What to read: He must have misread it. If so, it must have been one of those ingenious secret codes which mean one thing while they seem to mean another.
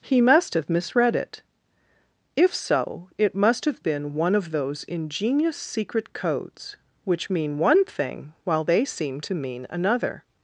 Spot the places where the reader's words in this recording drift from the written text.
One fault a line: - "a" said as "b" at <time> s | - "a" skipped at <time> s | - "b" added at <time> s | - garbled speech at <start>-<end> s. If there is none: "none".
none